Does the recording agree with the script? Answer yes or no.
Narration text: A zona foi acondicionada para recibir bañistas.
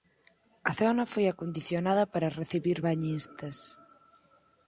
yes